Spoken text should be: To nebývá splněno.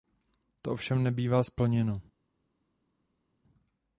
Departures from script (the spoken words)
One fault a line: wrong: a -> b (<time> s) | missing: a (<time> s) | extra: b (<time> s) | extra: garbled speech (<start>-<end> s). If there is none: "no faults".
extra: ovšem (0.7 s)